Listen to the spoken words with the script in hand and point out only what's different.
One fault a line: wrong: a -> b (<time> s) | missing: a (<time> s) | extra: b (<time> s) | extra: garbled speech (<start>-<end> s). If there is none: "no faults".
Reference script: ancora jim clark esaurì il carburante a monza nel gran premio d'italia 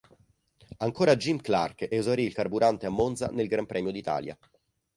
no faults